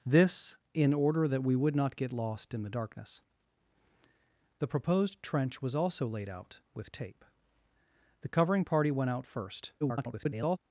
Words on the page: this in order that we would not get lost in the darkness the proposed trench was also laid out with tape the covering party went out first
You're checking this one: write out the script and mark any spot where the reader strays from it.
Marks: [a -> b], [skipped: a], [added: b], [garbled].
this in order that we would not get lost in the darkness the proposed trench was also laid out with tape the covering party went out first [garbled]